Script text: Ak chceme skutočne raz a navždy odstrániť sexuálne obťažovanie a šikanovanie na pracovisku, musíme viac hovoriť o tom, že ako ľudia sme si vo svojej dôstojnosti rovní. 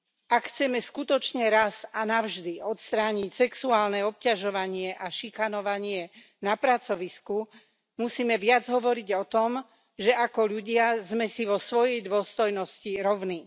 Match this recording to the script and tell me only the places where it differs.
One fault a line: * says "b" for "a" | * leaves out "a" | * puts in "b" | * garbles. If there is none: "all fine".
all fine